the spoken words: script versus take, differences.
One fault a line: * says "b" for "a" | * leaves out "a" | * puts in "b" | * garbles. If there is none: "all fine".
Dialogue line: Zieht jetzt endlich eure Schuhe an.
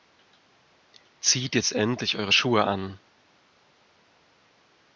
all fine